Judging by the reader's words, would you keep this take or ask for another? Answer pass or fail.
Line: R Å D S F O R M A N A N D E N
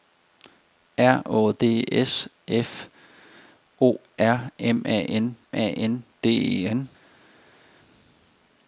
pass